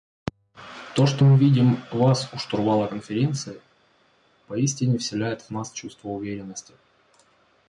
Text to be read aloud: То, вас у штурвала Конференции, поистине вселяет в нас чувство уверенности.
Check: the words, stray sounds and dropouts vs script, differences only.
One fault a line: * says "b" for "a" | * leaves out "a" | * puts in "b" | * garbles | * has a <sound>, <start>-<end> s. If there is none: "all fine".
* puts in "что мы видим"